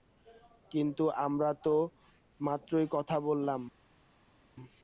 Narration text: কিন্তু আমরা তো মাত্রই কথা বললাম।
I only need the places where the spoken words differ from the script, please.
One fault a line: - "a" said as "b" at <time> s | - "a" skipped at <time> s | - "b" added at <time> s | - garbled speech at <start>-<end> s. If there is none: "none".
none